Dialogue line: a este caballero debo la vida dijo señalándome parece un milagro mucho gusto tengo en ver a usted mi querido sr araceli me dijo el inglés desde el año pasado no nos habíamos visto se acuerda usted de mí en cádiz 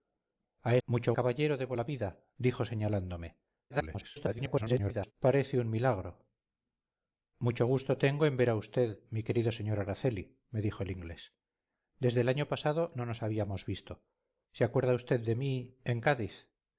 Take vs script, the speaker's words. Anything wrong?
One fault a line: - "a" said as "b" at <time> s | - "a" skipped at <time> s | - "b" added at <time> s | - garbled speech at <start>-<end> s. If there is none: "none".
- "este" said as "mucho" at 0.8 s
- garbled speech at 3.7-5.1 s